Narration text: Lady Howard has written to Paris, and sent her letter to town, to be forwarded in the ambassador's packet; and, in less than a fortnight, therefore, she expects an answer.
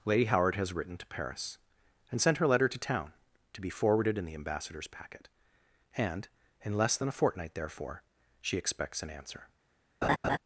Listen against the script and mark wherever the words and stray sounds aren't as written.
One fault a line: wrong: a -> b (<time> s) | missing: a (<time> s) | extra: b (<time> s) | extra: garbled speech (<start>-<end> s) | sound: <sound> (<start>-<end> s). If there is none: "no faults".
sound: laugh (10.0-10.4 s)